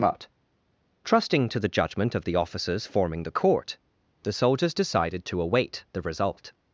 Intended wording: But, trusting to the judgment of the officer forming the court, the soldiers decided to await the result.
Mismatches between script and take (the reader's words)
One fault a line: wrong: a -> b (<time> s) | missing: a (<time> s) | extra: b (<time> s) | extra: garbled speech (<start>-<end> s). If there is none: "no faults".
wrong: officer -> officers (2.4 s)